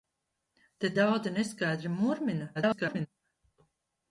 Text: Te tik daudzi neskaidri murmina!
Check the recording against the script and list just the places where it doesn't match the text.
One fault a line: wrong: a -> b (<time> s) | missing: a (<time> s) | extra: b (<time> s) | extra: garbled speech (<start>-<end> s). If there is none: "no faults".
missing: tik (0.9 s)
extra: garbled speech (2.5-3.1 s)